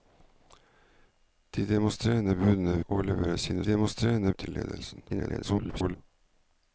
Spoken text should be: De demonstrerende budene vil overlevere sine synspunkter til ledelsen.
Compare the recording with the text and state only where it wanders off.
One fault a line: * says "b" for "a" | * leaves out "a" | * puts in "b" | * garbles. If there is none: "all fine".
* leaves out "vil"
* says "demonstrerende" for "synspunkter"
* garbles